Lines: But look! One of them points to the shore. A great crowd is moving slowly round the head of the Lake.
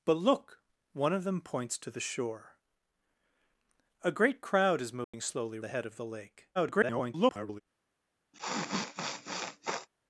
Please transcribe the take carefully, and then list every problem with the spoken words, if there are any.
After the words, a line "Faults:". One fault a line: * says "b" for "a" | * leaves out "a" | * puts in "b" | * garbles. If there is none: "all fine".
But look! One of them points to the shore. A great crowd is moving slowly the head of the Lake. [garbled]
Faults:
* leaves out "round"
* garbles